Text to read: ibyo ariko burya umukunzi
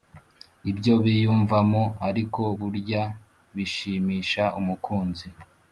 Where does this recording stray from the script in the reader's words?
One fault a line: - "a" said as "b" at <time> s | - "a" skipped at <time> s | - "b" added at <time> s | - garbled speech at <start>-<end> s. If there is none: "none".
- "biyumvamo" added at 1.0 s
- "bishimisha" added at 3.6 s